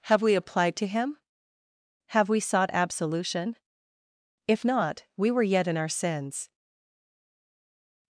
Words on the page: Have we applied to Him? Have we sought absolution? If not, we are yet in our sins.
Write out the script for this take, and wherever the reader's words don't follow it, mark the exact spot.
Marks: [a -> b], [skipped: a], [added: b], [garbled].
Have we applied to Him? Have we sought absolution? If not, we [are -> were] yet in our sins.